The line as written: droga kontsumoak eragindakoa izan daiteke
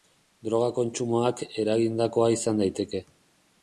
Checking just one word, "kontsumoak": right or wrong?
right